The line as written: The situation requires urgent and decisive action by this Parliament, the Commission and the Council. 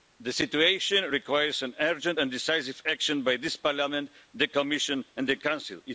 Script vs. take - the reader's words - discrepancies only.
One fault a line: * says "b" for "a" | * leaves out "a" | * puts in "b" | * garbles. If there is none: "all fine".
all fine